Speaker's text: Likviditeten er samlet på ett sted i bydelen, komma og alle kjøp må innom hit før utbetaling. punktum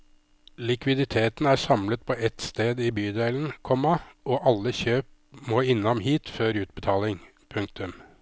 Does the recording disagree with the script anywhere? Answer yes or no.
no